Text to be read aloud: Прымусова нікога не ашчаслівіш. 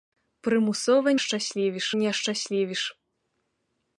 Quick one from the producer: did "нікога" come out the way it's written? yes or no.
no